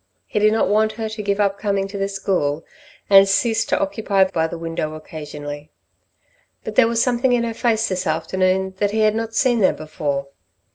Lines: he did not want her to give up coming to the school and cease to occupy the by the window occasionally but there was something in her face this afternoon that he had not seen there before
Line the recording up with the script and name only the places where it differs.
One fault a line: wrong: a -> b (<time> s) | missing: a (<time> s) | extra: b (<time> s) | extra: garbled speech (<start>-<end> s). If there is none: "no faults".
no faults